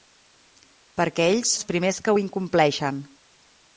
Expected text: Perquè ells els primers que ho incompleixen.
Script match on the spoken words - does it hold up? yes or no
yes